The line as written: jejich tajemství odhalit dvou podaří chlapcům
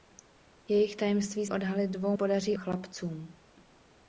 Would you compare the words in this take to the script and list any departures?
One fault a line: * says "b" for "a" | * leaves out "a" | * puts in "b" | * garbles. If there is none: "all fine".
all fine